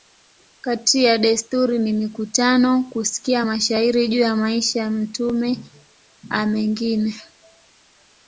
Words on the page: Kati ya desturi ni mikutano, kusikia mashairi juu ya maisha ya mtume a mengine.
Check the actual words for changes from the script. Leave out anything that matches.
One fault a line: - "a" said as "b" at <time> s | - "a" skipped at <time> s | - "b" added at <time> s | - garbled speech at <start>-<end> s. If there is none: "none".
none